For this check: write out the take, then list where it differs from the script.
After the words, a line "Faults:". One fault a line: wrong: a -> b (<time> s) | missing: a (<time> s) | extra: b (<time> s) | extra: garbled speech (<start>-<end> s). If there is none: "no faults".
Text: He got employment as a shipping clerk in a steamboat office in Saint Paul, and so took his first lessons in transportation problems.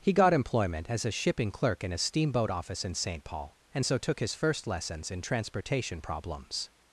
He got employment as a shipping clerk in a steamboat office in Saint Paul, and so took his first lessons in transportation problems.
Faults:
no faults